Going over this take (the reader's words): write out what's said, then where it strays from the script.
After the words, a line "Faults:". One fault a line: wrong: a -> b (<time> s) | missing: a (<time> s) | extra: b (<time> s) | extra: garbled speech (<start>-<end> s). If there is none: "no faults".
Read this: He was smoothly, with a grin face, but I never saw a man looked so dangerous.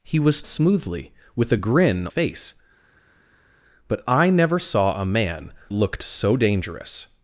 He was smoothly, with a grin face, but I never saw a man looked so dangerous.
Faults:
no faults